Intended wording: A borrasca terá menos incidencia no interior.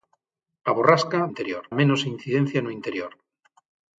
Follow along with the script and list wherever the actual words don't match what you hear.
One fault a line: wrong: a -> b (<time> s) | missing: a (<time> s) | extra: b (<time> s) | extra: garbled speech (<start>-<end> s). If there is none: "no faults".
wrong: terá -> interior (1.3 s)